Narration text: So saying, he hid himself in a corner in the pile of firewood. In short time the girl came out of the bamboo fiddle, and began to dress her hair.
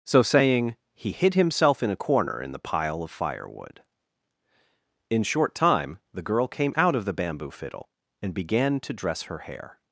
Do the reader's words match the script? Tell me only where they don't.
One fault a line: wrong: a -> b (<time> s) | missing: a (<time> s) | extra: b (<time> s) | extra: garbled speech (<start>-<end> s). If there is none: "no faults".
no faults